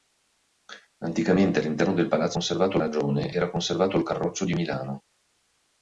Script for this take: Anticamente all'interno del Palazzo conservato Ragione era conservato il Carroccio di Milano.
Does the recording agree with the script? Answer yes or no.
yes